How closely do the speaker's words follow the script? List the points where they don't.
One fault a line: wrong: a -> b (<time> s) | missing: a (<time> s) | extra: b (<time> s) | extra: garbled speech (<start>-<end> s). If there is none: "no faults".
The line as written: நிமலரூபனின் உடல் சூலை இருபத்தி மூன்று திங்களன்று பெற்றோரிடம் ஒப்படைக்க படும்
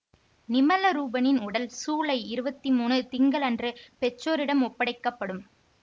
no faults